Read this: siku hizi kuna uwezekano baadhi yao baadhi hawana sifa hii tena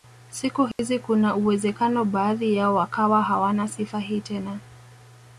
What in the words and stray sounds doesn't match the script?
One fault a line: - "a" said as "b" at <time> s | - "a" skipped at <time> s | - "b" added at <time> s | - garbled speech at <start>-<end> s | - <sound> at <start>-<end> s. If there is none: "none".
- dropout at 0.7-0.8 s
- "baadhi" said as "wakawa" at 2.8 s